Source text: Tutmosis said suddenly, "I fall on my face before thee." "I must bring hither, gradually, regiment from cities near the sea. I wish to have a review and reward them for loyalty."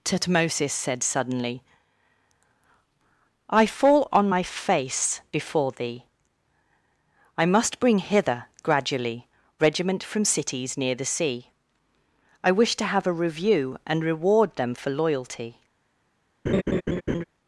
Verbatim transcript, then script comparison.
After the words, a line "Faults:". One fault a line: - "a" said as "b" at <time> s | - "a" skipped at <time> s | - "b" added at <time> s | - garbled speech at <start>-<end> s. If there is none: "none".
Tutmosis said suddenly, "I fall on my face before thee." "I must bring hither, gradually, regiment from cities near the sea. I wish to have a review and reward them for loyalty."
Faults:
none